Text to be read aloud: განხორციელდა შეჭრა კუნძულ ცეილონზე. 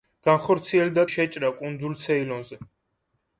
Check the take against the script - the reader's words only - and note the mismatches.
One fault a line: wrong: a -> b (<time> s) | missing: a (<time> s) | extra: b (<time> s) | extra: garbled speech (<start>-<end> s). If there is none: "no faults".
no faults